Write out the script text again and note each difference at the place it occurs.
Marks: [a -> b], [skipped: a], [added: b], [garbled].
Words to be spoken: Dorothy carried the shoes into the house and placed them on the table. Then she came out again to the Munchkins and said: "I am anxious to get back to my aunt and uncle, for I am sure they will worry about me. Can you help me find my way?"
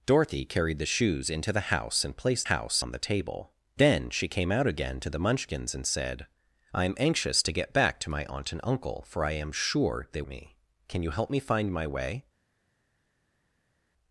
Dorothy carried the shoes into the house and placed [them -> house] on the table. Then she came out again to the Munchkins and said: "I am anxious to get back to my aunt and uncle, for I am sure they [skipped: will worry about] me. Can you help me find my way?"